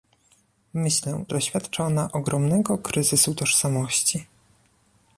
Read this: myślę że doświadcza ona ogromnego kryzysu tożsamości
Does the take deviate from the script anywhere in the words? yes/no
yes